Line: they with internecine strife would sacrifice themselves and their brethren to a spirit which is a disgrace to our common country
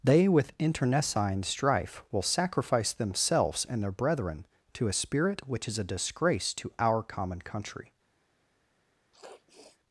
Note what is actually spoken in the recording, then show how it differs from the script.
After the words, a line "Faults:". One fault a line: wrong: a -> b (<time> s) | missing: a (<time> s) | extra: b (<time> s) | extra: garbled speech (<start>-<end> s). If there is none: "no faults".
they with internecine strife will sacrifice themselves and their brethren to a spirit which is a disgrace to our common country
Faults:
wrong: would -> will (2.1 s)